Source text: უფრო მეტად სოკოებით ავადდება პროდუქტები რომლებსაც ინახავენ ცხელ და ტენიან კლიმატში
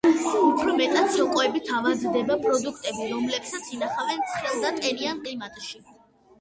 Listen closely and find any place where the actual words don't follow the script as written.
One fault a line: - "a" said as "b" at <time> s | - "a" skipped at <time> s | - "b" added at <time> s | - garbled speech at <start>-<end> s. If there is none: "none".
none